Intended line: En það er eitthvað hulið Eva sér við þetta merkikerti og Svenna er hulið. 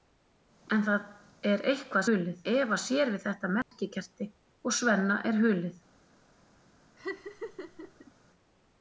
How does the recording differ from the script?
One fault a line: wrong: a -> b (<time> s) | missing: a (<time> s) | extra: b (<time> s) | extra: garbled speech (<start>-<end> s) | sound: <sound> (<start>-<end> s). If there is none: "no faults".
sound: dropout (3.6-3.7 s)
sound: laugh (7.0-8.1 s)